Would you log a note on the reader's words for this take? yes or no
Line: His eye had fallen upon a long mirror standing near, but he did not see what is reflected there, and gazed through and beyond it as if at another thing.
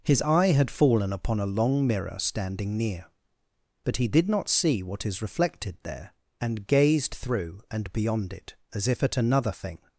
no